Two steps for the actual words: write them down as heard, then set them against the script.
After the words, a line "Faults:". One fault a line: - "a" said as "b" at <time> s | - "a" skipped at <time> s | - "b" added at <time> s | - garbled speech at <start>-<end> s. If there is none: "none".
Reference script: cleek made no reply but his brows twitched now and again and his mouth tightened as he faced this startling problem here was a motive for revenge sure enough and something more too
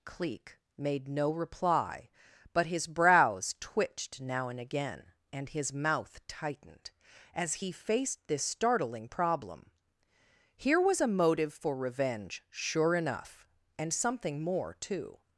cleek made no reply but his brows twitched now and again and his mouth tightened as he faced this startling problem here was a motive for revenge sure enough and something more too
Faults:
none